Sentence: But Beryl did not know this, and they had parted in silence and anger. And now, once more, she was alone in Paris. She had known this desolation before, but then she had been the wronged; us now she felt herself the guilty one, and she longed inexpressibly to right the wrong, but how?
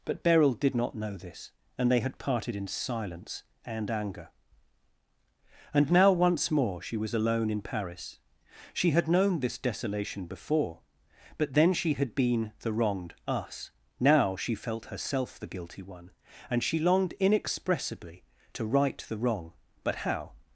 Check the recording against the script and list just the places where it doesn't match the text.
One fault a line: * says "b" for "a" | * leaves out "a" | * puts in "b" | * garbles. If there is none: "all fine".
all fine